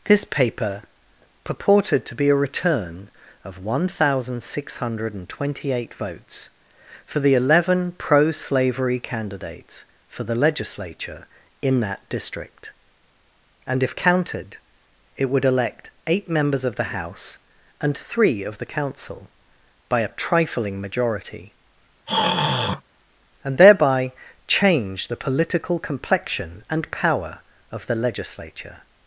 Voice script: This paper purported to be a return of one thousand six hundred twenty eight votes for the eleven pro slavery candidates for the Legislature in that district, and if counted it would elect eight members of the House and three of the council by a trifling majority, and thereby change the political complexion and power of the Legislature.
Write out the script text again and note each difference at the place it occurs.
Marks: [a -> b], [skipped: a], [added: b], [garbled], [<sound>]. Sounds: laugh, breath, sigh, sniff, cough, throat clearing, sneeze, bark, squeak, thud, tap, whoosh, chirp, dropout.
This paper purported to be a return of one thousand six hundred twenty eight votes for the eleven pro slavery candidates for the Legislature in that district, and if counted it would elect eight members of the House and three of the council by a trifling majority, [throat clearing] and thereby change the political complexion and power of the Legislature.